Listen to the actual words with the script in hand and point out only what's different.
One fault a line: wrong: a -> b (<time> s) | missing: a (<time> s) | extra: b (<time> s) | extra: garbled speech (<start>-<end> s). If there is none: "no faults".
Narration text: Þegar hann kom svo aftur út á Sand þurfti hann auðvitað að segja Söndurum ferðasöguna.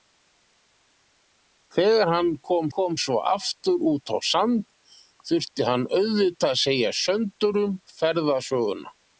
extra: kom (2.8 s)